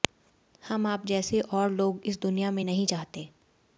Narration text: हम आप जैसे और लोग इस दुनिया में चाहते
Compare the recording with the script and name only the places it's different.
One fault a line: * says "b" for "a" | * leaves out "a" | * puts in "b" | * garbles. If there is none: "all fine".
* puts in "नहीं"